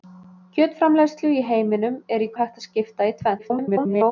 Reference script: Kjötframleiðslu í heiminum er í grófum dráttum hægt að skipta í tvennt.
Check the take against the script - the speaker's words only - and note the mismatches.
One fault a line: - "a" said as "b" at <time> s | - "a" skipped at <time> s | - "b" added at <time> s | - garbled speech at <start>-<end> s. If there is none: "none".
- "grófum dráttum" skipped at 2.3 s
- garbled speech at 3.4-4.1 s